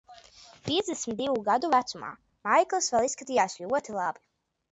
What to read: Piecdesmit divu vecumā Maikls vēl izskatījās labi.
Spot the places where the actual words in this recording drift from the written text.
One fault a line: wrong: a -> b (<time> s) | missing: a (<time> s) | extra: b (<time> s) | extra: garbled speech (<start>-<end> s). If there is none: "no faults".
extra: gadu (1.5 s)
extra: ļoti (3.6 s)